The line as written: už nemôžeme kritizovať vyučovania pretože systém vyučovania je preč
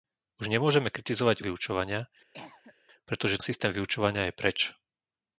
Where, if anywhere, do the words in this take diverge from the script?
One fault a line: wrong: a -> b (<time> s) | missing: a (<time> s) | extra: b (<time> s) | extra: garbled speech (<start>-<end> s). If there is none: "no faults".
no faults